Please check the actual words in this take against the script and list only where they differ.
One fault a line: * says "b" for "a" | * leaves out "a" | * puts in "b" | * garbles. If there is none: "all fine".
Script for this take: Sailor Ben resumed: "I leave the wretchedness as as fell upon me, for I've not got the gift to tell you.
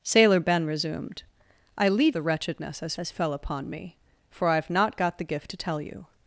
all fine